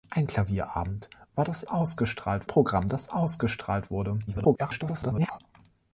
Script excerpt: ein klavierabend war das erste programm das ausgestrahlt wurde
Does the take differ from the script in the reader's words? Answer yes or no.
yes